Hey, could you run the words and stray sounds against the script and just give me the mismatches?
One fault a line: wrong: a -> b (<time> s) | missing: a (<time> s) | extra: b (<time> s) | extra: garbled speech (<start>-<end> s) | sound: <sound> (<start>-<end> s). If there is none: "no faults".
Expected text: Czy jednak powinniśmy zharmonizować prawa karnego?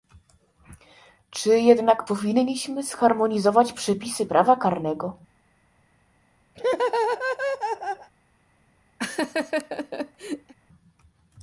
extra: przepisy (3.7 s)
sound: laugh (6.5-8.1 s)
sound: laugh (9.0-10.5 s)